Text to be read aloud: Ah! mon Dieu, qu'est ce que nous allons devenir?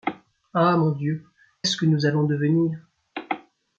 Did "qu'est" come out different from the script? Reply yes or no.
yes